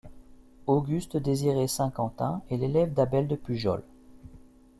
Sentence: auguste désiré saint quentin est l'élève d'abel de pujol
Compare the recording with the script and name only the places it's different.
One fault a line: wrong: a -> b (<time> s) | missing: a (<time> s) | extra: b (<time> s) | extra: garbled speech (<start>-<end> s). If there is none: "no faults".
no faults